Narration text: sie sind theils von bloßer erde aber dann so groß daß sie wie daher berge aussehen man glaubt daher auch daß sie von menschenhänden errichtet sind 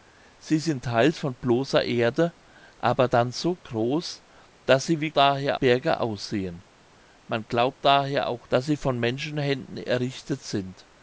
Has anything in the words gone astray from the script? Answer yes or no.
no